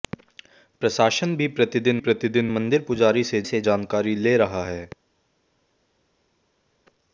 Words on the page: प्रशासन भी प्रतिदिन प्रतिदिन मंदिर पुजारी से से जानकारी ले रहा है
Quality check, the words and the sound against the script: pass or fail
pass